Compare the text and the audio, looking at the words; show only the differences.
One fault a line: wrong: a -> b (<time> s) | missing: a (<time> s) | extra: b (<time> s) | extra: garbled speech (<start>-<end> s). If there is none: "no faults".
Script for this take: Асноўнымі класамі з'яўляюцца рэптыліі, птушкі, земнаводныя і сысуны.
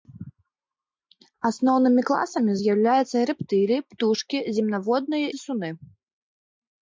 missing: і (5.3 s)